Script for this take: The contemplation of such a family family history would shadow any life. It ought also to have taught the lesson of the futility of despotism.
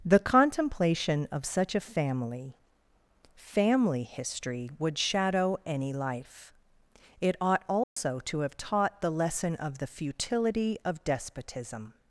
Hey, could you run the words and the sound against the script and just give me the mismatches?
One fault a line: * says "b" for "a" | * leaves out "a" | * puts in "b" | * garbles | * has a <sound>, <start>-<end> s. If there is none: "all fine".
* has a dropout, 7.8-8.0 s